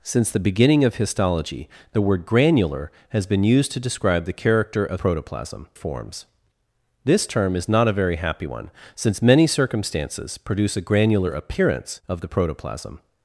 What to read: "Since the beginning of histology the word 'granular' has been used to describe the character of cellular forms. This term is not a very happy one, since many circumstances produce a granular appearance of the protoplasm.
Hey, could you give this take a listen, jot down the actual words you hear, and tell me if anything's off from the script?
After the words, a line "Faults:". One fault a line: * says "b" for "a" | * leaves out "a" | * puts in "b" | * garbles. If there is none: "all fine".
"Since the beginning of histology the word 'granular' has been used to describe the character of protoplasm forms. This term is not a very happy one, since many circumstances produce a granular appearance of the protoplasm.
Faults:
* says "protoplasm" for "cellular"